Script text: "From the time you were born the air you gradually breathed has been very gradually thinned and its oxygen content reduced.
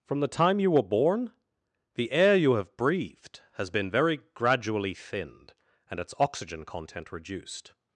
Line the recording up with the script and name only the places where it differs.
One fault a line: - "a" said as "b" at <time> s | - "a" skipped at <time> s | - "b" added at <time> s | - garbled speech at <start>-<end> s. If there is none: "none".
- "gradually" said as "have" at 2.5 s